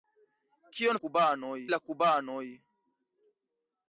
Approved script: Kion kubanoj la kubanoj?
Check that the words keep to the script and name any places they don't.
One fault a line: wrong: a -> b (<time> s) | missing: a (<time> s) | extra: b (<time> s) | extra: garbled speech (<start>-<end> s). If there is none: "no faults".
no faults